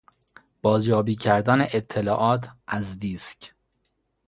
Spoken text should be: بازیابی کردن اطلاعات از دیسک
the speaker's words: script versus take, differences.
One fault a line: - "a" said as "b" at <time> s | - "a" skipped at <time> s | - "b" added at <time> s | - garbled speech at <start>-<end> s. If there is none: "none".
none